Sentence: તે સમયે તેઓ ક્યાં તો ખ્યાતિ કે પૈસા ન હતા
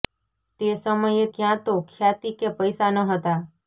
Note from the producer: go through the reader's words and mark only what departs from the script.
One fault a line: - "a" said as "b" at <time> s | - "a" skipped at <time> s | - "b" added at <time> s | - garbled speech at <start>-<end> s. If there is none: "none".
- "તેઓ" skipped at 1.2 s